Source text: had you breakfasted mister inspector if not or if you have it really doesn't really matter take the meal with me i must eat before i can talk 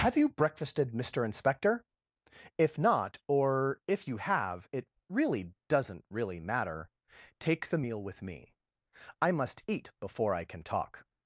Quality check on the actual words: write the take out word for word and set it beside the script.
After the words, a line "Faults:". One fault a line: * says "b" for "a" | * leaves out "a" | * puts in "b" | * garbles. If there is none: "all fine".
have you breakfasted mister inspector if not or if you have it really doesn't really matter take the meal with me i must eat before i can talk
Faults:
* says "have" for "had"